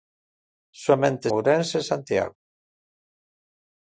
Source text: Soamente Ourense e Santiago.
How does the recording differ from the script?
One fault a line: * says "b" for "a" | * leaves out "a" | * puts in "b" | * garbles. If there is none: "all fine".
all fine